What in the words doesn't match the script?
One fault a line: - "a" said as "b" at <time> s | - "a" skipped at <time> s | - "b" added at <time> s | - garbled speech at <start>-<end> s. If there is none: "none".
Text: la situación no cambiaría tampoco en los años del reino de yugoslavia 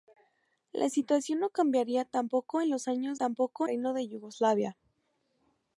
- "del" said as "tampoco" at 3.1 s